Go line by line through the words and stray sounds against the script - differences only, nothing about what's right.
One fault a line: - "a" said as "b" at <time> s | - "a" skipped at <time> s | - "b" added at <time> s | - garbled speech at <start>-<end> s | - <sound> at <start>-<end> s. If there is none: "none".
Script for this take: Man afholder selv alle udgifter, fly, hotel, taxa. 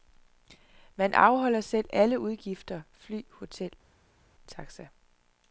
none